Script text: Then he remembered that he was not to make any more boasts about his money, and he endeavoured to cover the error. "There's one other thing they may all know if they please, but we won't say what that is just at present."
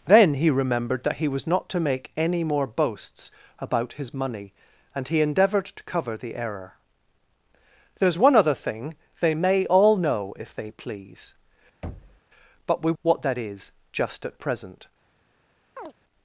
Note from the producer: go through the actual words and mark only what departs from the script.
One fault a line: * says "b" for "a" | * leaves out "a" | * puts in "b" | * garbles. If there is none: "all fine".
* leaves out "won't say"